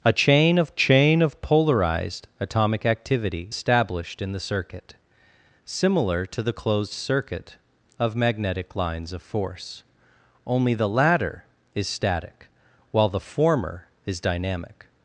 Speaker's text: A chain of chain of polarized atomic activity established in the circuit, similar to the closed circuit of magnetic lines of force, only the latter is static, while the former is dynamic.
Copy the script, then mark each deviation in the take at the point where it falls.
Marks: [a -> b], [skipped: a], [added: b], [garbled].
A chain of chain of polarized atomic activity established in the circuit, similar to the closed circuit of magnetic lines of force, only the latter is static, while the former is dynamic.